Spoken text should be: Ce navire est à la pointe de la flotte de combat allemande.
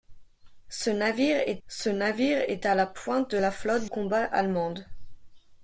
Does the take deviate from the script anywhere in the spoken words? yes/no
yes